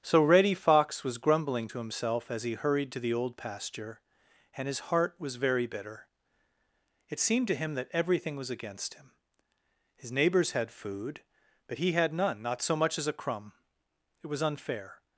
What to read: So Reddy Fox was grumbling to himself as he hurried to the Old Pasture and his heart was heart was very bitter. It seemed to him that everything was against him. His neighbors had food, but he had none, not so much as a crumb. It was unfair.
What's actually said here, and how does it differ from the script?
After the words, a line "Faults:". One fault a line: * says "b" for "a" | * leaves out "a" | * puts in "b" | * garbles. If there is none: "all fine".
So Reddy Fox was grumbling to himself as he hurried to the Old Pasture and his heart was very bitter. It seemed to him that everything was against him. His neighbors had food, but he had none, not so much as a crumb. It was unfair.
Faults:
* leaves out "heart was"